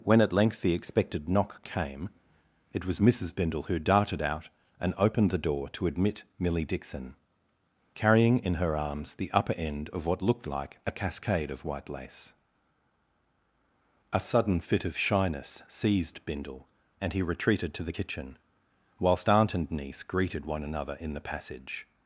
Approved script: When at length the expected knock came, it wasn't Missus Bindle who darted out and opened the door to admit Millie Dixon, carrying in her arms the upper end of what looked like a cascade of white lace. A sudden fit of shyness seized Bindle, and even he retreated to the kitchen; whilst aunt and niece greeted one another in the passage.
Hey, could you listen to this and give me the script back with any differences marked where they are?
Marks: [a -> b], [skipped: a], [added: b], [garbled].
When at length the expected knock came, it [wasn't -> was] Missus Bindle who darted out and opened the door to admit Millie Dixon, carrying in her arms the upper end of what looked like a cascade of white lace. A sudden fit of shyness seized Bindle, and [skipped: even] he retreated to the kitchen; whilst aunt and niece greeted one another in the passage.